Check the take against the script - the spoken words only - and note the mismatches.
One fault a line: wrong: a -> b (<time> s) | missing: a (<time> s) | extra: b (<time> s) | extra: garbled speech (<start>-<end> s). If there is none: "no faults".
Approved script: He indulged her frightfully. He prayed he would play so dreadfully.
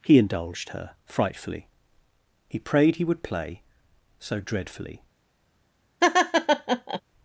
no faults